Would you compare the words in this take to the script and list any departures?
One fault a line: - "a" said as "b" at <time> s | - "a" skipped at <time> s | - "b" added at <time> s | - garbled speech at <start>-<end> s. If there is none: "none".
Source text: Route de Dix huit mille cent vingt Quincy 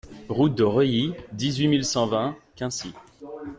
- "Reuilly" added at 0.6 s